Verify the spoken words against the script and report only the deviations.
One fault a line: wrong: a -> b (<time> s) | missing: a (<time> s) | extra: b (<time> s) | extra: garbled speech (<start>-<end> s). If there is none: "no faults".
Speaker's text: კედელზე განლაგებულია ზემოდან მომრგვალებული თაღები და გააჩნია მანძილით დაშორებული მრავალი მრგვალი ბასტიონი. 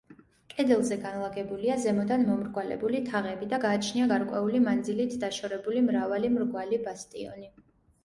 extra: გარკვეული (4.1 s)